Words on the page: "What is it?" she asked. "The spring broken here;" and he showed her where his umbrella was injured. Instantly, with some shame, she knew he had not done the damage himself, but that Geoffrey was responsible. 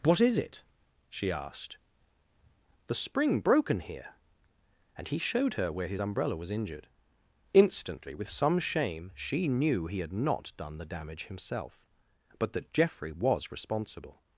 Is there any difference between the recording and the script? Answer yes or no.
no